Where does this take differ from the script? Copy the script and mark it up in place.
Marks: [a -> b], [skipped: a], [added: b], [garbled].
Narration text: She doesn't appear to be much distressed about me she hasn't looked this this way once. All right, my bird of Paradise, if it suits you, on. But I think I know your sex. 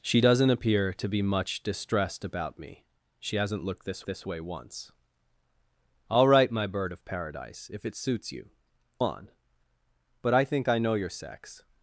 She doesn't appear to be much distressed about me she hasn't looked this this way once. All right, my bird of Paradise, if it suits you, on. But I think I know your sex.